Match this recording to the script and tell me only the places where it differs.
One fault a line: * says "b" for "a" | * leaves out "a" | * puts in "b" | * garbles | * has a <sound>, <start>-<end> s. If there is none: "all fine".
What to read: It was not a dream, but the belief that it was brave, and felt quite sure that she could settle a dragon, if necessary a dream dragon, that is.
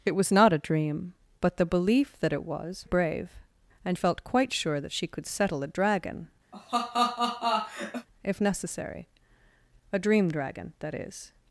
* has a laugh, 6.5-8.1 s